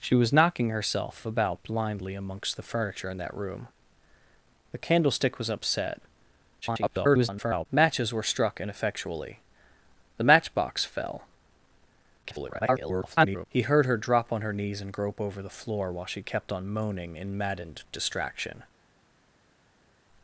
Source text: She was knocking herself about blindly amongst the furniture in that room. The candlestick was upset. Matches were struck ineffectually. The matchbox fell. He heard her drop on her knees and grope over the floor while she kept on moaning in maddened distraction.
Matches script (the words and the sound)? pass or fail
fail